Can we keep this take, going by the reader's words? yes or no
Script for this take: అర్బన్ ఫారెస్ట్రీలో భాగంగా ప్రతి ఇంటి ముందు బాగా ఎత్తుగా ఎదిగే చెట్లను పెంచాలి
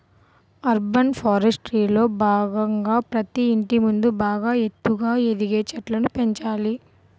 yes